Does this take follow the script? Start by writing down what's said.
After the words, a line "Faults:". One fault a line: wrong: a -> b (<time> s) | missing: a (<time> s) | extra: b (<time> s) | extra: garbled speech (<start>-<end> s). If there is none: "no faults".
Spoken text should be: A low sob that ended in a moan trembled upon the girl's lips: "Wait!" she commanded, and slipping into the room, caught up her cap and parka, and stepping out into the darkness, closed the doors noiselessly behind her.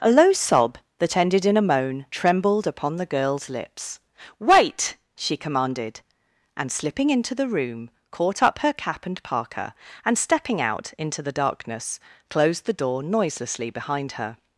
A low sob that ended in a moan trembled upon the girl's lips: "Wait!" she commanded, and slipping into the room, caught up her cap and parka, and stepping out into the darkness, closed the door noiselessly behind her.
Faults:
wrong: doors -> door (12.8 s)